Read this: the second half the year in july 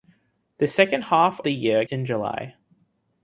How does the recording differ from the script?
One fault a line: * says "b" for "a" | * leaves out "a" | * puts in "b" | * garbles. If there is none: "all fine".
all fine